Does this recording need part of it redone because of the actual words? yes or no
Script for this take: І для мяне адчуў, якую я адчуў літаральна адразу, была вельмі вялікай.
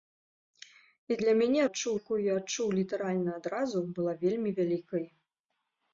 no